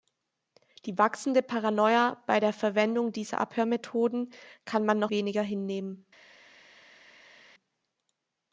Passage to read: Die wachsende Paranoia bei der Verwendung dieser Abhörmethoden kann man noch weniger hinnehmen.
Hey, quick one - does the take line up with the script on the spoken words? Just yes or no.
yes